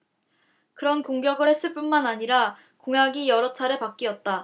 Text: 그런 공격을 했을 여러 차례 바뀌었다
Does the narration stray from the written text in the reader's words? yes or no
yes